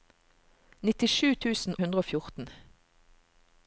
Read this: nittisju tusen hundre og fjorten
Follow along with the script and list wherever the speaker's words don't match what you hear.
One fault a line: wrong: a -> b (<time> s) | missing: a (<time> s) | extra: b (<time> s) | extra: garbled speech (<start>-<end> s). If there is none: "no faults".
no faults